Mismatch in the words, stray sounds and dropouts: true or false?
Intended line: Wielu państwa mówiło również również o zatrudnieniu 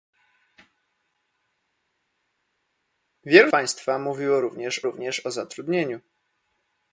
false